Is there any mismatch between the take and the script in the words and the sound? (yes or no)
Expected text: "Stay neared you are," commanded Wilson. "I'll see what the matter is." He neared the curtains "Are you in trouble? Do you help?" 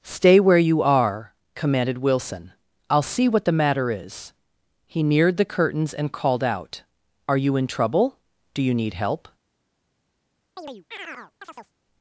yes